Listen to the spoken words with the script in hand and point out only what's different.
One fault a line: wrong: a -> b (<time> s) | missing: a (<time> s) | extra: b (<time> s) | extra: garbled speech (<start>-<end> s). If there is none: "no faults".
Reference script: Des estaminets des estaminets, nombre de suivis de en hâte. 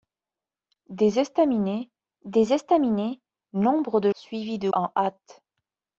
no faults